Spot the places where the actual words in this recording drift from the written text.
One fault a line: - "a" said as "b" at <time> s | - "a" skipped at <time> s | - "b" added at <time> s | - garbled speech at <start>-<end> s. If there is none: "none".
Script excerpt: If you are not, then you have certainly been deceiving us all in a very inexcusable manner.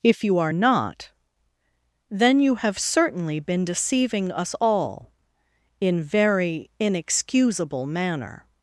- "a" skipped at 6.0 s